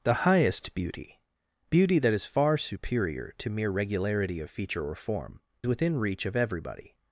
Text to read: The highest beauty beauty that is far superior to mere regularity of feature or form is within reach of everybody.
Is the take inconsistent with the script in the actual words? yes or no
yes